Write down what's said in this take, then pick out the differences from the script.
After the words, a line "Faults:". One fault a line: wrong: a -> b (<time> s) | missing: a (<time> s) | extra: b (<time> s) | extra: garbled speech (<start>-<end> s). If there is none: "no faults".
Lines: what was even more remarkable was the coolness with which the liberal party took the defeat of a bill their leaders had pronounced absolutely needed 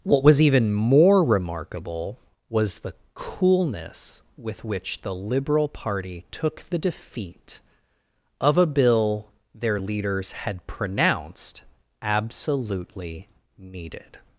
what was even more remarkable was the coolness with which the liberal party took the defeat of a bill their leaders had pronounced absolutely needed
Faults:
no faults